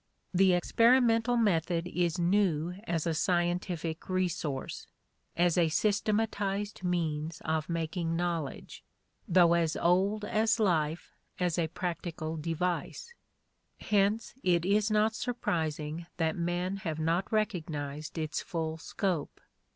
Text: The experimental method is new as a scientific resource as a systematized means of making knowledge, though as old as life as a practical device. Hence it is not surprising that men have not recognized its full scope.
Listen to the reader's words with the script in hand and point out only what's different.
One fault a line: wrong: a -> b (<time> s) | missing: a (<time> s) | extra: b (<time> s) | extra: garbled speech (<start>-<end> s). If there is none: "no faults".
no faults